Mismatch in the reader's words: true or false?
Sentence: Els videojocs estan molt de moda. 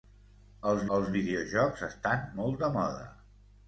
true